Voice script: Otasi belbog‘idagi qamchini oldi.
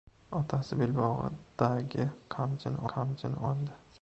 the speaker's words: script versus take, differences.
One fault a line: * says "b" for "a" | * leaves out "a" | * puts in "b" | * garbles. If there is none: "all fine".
* puts in "qamchini"